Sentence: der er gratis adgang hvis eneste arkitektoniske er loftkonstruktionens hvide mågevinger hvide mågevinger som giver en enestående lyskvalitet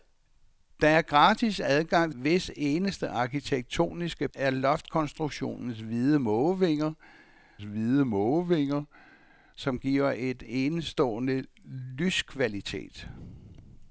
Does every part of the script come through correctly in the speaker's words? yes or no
yes